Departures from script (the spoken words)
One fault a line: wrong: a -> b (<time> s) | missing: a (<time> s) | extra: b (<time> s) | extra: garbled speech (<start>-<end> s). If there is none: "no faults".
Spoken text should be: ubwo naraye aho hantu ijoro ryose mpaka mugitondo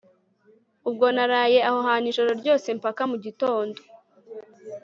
no faults